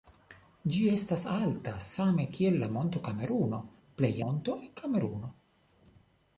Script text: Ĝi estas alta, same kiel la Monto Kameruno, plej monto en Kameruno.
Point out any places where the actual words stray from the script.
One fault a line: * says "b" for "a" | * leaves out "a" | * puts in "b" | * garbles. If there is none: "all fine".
all fine